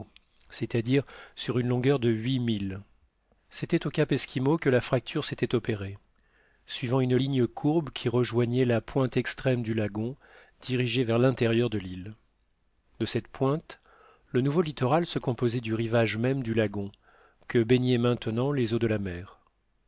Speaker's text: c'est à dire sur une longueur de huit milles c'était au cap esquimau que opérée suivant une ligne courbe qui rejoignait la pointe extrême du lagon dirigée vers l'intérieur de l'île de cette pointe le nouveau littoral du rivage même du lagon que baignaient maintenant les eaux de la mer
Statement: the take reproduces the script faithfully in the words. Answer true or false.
false